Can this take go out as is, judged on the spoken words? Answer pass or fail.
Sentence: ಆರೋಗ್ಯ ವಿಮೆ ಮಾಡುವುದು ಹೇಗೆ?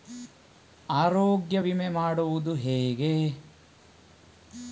pass